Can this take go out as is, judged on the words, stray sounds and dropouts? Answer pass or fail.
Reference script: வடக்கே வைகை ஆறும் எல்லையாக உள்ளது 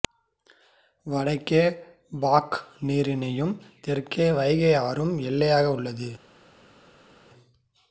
fail